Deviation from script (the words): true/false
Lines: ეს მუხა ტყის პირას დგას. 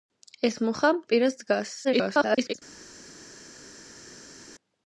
true